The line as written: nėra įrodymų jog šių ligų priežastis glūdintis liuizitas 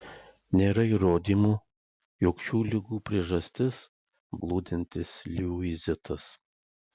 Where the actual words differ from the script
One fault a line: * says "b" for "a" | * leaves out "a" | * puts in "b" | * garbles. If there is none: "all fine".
all fine